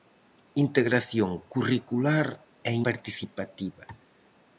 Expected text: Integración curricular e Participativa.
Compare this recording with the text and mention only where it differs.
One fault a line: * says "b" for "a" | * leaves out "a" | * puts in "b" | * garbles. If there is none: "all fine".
all fine